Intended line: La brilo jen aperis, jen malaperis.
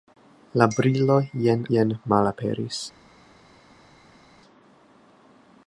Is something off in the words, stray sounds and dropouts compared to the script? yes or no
yes